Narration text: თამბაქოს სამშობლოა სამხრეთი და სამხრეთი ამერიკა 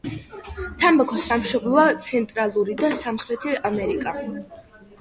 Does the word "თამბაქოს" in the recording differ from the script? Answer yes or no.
no